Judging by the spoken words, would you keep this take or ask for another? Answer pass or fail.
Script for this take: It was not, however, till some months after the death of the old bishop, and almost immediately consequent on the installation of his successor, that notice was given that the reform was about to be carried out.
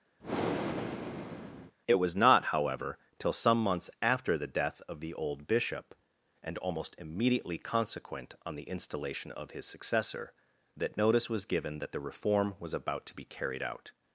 pass